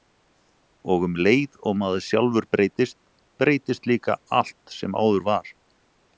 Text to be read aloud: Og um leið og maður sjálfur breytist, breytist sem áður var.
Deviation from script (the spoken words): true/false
true